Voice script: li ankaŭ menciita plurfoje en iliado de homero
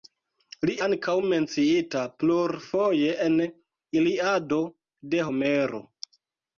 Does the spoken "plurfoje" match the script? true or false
true